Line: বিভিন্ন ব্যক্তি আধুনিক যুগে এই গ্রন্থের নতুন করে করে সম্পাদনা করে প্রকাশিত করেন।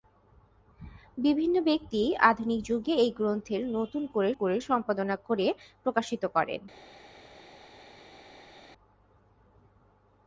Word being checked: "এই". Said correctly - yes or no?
yes